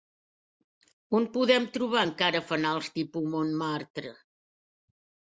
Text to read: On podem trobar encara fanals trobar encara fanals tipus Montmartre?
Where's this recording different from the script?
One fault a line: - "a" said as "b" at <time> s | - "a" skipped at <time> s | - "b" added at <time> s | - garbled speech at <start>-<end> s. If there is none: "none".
- "trobar encara fanals" skipped at 2.9 s